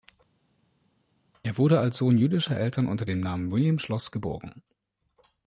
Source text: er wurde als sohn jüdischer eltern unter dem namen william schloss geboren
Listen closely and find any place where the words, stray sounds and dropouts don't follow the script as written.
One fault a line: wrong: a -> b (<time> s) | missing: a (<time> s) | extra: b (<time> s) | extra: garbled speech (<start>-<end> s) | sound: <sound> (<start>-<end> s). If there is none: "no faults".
no faults